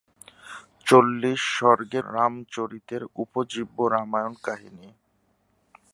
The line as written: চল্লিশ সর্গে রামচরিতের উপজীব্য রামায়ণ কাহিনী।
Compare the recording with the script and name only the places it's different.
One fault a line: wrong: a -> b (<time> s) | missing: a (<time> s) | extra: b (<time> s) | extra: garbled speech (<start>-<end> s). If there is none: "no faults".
no faults